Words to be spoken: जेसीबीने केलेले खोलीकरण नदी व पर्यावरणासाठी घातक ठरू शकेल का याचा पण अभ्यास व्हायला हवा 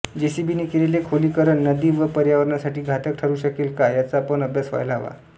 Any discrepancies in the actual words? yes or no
no